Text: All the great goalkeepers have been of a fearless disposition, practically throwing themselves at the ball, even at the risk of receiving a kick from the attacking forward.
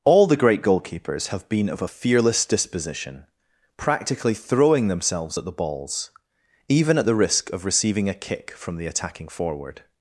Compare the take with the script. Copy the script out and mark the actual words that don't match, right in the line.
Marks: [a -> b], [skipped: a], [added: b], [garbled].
All the great goalkeepers have been of a fearless disposition, practically throwing themselves at the [ball, -> balls] even at the risk of receiving a kick from the attacking forward.